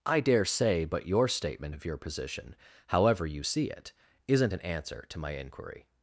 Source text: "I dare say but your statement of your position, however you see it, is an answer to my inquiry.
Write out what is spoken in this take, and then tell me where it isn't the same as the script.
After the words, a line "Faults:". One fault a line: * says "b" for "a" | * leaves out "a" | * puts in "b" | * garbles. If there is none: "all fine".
"I dare say but your statement of your position, however you see it, isn't an answer to my inquiry.
Faults:
* says "isn't" for "is"